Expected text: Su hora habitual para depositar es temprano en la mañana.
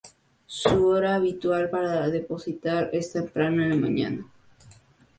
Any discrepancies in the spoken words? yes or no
no